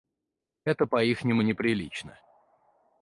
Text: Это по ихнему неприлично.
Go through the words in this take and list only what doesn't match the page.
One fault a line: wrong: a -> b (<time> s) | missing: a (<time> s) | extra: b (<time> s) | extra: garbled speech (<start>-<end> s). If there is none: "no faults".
no faults